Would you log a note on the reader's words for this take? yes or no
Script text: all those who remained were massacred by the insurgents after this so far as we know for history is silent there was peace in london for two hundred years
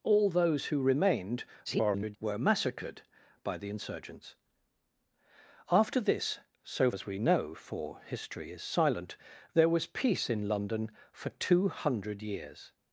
yes